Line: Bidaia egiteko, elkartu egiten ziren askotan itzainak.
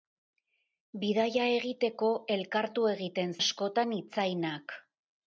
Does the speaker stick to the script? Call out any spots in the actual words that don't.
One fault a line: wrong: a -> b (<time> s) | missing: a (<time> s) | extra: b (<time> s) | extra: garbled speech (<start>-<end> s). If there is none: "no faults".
missing: ziren (3.4 s)